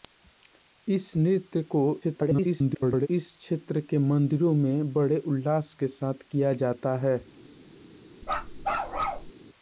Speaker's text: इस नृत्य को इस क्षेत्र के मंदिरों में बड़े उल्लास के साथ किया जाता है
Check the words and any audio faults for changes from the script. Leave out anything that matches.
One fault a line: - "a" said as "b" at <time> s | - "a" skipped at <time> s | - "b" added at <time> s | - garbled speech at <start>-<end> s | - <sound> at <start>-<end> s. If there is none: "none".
- garbled speech at 2.0-3.1 s
- bark at 8.2-9.3 s